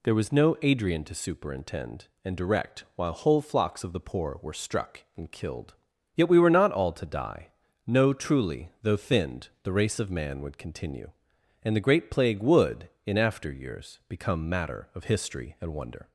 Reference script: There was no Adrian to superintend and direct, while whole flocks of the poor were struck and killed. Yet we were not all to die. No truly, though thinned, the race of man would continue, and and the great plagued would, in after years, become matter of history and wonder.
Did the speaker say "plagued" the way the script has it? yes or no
no